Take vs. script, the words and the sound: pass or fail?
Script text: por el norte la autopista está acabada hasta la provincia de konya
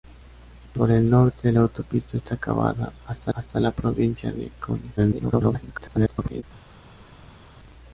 fail